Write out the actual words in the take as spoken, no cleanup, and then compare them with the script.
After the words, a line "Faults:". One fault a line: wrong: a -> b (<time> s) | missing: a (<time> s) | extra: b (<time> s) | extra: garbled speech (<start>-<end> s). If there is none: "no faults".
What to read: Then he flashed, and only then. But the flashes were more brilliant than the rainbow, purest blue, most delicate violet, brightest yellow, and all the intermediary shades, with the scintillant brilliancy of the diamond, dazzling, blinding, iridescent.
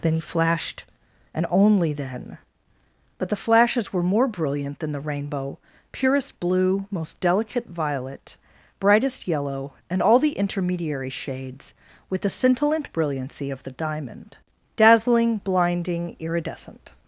Then he flashed, and only then. But the flashes were more brilliant than the rainbow, purest blue, most delicate violet, brightest yellow, and all the intermediary shades, with the scintillant brilliancy of the diamond, dazzling, blinding, iridescent.
Faults:
no faults